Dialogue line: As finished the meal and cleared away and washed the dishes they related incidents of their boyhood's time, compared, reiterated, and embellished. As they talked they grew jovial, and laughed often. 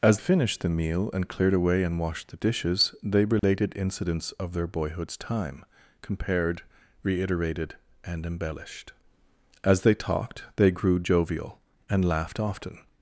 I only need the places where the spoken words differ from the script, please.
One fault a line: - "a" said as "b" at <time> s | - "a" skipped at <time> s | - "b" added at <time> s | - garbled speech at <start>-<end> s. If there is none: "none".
none